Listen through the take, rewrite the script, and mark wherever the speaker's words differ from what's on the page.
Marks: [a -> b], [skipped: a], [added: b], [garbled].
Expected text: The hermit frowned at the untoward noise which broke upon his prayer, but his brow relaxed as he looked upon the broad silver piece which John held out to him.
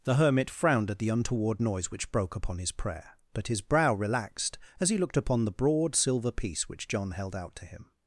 The hermit frowned at the untoward noise which broke upon his prayer, but his brow relaxed as he looked upon the broad silver piece which John held out to him.